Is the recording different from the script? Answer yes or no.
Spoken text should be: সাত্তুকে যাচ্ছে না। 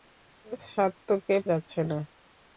no